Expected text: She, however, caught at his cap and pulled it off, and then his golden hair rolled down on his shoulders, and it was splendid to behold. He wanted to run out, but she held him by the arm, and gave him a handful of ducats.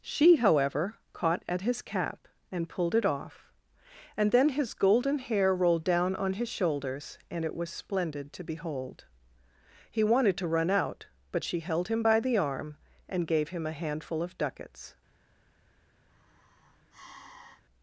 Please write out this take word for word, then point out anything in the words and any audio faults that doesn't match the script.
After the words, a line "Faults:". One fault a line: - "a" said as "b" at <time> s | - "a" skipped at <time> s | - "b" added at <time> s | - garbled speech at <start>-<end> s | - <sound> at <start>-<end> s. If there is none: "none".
She, however, caught at his cap and pulled it off, and then his golden hair rolled down on his shoulders, and it was splendid to behold. He wanted to run out, but she held him by the arm, and gave him a handful of ducats.
Faults:
- sigh at 16.1-17.6 s